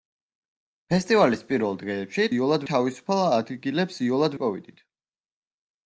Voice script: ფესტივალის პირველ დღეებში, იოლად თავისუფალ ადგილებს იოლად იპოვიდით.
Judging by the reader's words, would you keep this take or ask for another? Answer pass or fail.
pass